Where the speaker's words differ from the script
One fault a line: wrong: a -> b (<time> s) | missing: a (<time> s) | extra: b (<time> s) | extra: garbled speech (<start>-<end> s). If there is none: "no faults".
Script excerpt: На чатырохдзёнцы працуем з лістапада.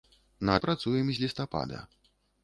missing: чатырохдзёнцы (0.5 s)